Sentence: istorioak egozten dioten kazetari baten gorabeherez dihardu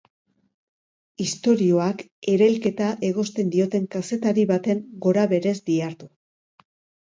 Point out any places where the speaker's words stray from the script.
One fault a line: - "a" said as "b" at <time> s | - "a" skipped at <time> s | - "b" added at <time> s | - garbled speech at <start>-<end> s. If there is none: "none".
- "erailketa" added at 2.3 s